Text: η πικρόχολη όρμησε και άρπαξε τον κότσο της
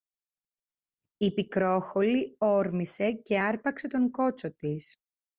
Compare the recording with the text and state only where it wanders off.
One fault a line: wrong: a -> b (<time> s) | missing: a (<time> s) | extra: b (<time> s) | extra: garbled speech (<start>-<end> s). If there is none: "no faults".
no faults